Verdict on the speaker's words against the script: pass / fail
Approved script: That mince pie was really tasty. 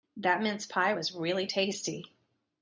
pass